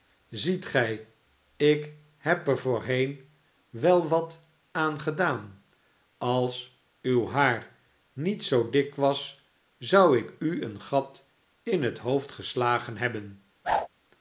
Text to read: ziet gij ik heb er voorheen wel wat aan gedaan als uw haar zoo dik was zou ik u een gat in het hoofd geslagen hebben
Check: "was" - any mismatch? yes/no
no